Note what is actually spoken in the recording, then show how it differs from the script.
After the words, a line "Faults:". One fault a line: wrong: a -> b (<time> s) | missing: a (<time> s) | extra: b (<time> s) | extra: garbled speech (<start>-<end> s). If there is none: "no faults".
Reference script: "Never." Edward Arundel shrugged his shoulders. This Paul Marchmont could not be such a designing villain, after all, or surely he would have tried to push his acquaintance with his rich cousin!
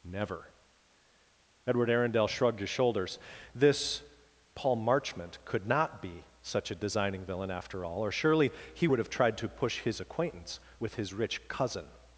"Never." Edward Arundel shrugged his shoulders. This Paul Marchmont could not be such a designing villain, after all, or surely he would have tried to push his acquaintance with his rich cousin!
Faults:
no faults